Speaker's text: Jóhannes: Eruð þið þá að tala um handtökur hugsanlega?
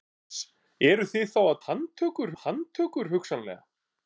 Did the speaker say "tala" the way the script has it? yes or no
no